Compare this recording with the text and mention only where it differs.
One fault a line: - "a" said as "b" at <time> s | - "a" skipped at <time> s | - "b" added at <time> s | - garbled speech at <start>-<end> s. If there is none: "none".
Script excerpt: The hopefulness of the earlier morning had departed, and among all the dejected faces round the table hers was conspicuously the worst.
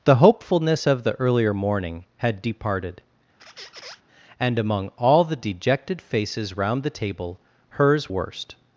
- "was conspicuously the" skipped at 8.1 s